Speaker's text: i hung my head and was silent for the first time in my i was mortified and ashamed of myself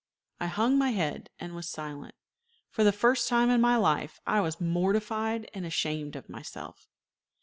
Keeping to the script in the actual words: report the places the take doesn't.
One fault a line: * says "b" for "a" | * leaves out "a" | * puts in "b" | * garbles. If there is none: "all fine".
* puts in "life"